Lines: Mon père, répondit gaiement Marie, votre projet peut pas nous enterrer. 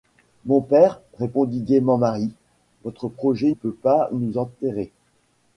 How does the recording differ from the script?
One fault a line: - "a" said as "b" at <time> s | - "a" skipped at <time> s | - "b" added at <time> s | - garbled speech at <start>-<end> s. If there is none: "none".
none